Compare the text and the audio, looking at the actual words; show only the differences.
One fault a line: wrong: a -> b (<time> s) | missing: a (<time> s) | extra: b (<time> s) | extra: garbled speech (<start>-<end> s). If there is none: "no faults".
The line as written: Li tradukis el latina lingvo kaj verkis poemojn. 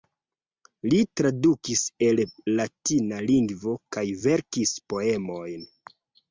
no faults